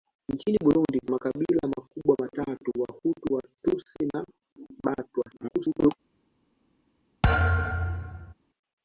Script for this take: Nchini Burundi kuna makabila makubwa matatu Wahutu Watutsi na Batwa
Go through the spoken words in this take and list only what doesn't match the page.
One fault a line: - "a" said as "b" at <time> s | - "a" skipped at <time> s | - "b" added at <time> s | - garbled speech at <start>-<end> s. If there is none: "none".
- "kuna" skipped at 1.0 s
- garbled speech at 5.3-5.9 s